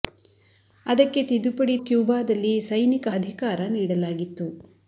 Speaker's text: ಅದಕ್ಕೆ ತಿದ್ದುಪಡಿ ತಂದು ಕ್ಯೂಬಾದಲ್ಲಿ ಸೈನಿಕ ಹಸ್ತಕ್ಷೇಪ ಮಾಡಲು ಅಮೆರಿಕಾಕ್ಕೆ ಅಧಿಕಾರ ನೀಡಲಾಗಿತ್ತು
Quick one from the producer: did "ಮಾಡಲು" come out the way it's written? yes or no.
no